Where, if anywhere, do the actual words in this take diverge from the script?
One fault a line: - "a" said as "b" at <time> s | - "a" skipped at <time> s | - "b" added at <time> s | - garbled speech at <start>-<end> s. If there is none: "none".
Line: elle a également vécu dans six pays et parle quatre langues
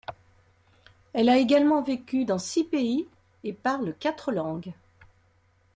none